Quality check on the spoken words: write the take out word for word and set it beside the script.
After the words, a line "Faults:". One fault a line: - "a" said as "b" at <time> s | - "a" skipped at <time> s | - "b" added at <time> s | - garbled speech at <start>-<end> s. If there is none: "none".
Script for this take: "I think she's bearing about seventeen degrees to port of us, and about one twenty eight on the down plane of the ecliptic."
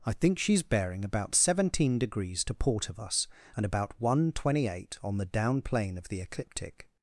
"I think she's bearing about seventeen degrees to port of us, and about one twenty eight on the down plane of the ecliptic."
Faults:
none